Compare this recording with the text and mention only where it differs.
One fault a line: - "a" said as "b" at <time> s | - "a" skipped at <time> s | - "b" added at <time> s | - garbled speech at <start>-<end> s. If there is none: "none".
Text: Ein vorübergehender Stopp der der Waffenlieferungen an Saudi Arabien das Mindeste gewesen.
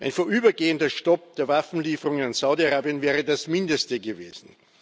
- "der" skipped at 1.5 s
- "wäre" added at 3.0 s